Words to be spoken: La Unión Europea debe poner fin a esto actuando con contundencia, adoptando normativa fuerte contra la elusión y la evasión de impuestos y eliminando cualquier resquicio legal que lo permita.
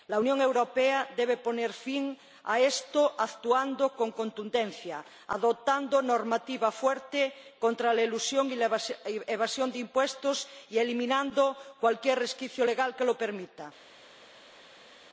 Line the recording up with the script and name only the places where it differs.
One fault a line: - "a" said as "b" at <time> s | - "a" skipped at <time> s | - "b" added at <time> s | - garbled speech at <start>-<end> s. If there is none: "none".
none